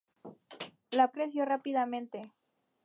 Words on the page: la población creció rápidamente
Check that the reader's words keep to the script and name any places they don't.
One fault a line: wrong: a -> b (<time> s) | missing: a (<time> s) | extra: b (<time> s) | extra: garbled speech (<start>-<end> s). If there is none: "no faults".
missing: población (1.1 s)